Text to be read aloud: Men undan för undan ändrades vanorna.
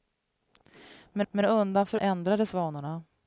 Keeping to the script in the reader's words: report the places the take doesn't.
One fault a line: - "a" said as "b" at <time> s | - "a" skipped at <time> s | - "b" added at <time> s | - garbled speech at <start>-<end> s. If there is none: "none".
- "men" added at 1.3 s
- "undan" skipped at 2.0 s